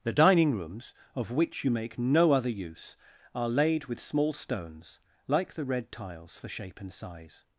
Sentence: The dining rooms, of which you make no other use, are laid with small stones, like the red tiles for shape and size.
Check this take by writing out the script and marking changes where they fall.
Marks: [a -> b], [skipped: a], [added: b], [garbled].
The dining rooms, of which you make no other use, are laid with small stones, like the red tiles for shape and size.